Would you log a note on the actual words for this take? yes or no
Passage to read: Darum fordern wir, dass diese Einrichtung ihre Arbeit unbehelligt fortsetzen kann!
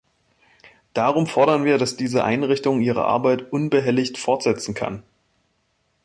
no